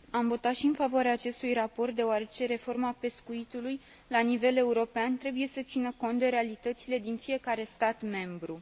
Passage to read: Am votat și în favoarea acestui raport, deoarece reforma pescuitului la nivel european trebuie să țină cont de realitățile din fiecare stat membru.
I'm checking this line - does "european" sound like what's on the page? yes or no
yes